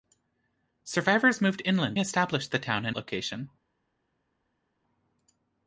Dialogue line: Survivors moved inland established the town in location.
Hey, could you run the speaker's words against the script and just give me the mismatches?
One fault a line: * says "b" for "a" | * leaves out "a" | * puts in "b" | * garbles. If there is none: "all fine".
all fine